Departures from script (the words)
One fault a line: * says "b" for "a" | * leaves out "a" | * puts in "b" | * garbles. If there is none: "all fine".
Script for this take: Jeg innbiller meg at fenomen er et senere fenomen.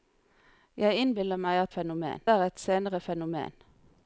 all fine